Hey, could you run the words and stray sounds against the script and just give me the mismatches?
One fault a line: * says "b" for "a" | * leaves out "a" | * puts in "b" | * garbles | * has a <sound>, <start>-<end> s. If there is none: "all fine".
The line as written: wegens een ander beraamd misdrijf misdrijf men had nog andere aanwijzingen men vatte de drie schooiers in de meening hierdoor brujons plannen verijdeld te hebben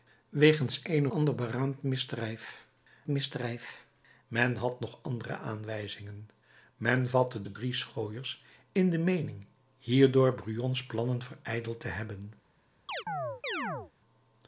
* has a chirp, 12.9-13.9 s